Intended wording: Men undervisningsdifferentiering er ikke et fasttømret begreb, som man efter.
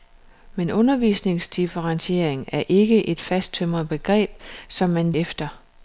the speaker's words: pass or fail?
pass